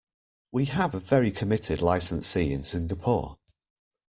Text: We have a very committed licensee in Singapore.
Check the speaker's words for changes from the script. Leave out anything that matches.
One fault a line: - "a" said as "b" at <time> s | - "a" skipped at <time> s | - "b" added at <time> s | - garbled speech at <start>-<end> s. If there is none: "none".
none